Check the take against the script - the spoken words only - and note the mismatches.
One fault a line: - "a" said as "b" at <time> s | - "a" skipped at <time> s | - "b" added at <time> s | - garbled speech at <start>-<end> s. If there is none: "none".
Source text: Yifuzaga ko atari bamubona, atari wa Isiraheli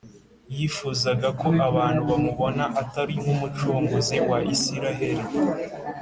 - "atari" said as "abantu" at 1.7 s
- "nk'Umucunguzi" added at 3.2 s